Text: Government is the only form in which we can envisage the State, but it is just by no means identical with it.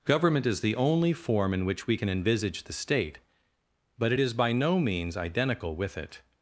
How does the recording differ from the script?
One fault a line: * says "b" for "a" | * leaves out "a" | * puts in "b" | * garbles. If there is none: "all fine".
* leaves out "just"